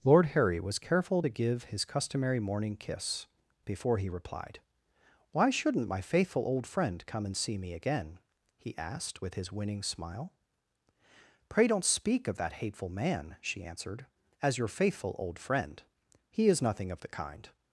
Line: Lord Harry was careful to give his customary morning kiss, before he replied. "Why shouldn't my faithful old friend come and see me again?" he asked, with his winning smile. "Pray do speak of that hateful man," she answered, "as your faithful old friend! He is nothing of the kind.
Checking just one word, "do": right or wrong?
wrong